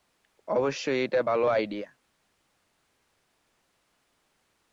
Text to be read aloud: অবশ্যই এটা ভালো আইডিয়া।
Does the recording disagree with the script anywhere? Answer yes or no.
no